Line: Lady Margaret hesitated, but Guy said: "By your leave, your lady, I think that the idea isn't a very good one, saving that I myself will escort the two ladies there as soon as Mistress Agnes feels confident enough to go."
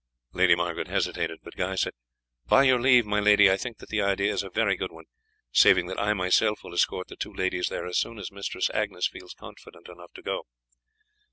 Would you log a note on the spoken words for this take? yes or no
yes